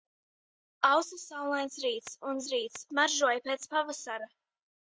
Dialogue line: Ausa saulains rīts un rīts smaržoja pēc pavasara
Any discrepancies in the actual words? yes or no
no